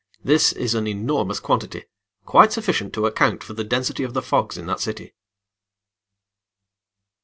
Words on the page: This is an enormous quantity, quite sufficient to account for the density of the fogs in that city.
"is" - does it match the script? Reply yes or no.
yes